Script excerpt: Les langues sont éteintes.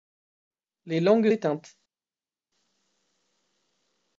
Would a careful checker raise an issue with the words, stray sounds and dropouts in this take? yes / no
yes